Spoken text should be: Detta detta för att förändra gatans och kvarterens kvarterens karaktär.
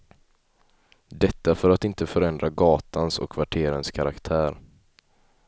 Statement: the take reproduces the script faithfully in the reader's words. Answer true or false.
false